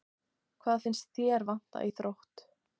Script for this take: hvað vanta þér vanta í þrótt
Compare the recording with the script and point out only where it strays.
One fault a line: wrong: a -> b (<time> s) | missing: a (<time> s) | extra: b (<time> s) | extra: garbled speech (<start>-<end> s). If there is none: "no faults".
wrong: vanta -> finnst (0.8 s)